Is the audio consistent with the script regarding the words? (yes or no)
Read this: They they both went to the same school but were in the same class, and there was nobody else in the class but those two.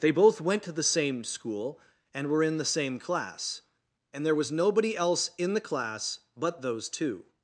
no